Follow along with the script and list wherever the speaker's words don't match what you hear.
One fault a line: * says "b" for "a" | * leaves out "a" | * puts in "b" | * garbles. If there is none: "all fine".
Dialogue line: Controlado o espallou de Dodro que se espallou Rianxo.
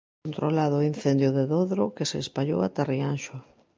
* says "incendio" for "espallou"
* puts in "ata"